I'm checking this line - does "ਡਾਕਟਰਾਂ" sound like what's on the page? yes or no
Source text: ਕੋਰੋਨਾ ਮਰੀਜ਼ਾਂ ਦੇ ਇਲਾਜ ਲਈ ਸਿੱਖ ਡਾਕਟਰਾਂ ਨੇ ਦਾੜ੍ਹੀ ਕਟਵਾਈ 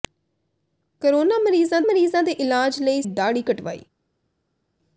no